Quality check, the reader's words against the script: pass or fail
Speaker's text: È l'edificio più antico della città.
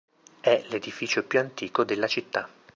pass